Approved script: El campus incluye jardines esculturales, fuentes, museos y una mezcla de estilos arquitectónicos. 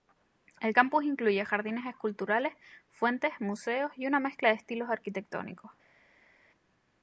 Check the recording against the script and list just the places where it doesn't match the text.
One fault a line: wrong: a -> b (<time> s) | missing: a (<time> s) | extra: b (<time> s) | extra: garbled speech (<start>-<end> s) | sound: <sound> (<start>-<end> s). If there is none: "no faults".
no faults